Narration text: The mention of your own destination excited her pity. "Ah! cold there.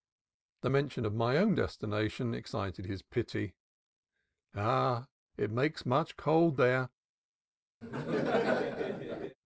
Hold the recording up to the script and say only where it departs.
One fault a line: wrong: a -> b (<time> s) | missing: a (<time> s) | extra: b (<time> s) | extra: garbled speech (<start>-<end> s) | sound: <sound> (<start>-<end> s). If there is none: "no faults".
wrong: your -> my (1.1 s)
wrong: her -> his (2.9 s)
extra: it makes much (5.4 s)
sound: laugh (7.8-9.4 s)